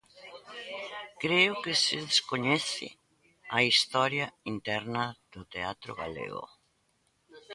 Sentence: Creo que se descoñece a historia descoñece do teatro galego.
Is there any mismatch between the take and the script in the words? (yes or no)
yes